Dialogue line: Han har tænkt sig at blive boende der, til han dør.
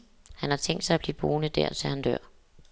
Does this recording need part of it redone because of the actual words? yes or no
no